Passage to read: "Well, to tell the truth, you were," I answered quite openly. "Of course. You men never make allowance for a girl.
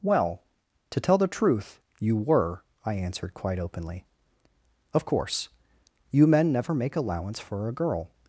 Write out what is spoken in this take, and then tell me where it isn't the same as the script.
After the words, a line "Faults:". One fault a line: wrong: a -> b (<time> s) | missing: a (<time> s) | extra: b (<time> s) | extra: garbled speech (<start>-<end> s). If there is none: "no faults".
"Well, to tell the truth, you were," I answered quite openly. "Of course. You men never make allowance for a girl.
Faults:
no faults